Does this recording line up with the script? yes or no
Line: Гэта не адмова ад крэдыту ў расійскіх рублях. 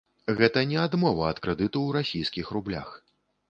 yes